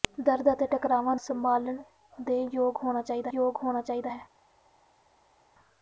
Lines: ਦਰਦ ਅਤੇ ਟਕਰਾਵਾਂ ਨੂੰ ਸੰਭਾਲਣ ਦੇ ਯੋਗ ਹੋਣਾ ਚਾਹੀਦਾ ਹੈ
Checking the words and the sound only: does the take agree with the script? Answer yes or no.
no